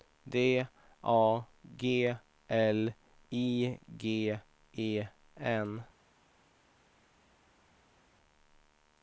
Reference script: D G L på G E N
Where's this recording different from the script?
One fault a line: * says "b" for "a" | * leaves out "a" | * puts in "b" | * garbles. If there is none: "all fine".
* puts in "A"
* says "I" for "på"